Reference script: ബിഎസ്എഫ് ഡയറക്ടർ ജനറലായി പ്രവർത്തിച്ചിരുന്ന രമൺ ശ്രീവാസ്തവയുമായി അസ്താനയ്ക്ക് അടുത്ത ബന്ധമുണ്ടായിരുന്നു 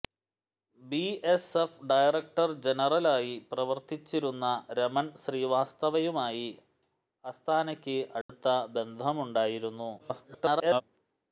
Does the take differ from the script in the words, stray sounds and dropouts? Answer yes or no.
yes